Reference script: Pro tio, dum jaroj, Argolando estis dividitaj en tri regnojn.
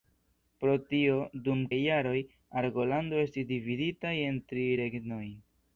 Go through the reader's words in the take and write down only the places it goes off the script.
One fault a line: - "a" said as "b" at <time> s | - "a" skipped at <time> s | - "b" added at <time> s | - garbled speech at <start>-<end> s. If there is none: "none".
none